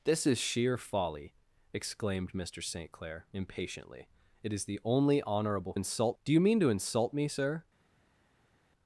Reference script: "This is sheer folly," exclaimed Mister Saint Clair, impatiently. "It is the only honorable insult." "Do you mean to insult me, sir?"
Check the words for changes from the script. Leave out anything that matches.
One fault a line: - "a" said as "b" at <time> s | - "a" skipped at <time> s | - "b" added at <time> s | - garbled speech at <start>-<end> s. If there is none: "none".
none